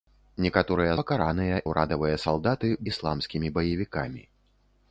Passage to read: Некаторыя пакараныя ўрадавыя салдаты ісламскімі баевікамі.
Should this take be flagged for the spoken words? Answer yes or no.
no